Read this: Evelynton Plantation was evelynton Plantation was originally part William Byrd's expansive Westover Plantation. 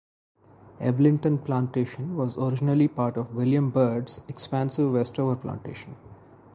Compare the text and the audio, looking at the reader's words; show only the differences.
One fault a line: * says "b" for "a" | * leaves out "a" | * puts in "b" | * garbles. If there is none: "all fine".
* leaves out "evelynton Plantation was"
* puts in "of"